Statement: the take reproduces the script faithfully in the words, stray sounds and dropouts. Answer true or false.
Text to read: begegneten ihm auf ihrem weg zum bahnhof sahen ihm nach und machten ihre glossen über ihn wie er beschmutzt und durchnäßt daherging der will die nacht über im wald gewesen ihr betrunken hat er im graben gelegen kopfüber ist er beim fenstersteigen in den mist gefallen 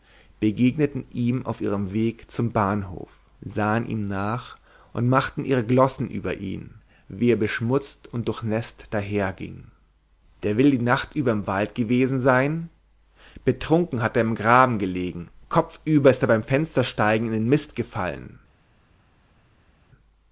false